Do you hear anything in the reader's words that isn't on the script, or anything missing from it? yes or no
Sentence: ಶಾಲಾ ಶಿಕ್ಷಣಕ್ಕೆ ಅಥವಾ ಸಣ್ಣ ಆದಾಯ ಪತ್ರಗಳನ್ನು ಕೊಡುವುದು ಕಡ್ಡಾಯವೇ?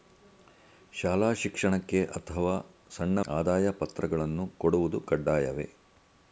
no